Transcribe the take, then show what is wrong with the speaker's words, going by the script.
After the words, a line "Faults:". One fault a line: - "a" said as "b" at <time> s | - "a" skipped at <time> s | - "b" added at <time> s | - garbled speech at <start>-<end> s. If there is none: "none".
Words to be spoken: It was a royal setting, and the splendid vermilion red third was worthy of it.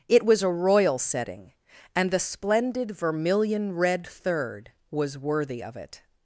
It was a royal setting, and the splendid vermilion red third was worthy of it.
Faults:
none